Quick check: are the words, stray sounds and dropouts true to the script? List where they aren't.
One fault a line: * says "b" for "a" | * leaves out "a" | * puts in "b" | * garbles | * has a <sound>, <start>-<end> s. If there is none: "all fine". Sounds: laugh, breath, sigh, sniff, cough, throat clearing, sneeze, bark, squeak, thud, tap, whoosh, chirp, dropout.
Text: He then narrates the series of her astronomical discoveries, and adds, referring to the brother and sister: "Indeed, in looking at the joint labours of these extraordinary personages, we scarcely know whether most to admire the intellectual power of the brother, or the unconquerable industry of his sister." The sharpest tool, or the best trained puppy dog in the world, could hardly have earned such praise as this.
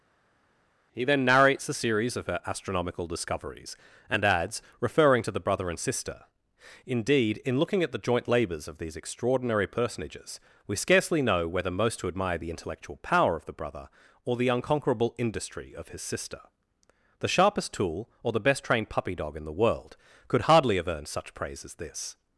* says "a" for "the"